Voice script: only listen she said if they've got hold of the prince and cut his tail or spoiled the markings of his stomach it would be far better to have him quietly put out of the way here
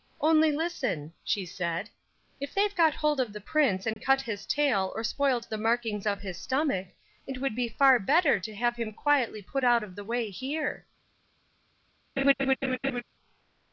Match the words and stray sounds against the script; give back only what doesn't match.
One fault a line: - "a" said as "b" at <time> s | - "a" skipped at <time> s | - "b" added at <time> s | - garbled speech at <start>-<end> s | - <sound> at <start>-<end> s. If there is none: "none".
- dropout at 3.9-4.0 s
- laugh at 12.2-13.0 s